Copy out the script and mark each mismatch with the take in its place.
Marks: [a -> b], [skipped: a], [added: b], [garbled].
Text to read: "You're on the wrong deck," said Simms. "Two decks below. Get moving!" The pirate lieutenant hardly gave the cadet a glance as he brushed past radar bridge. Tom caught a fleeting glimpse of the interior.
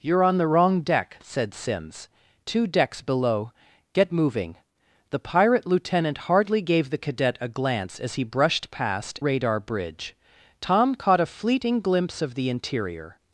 "You're on the wrong deck," said Simms. "Two decks below. Get moving!" The pirate lieutenant hardly gave the cadet a glance as he brushed past radar bridge. Tom caught a fleeting glimpse of the interior.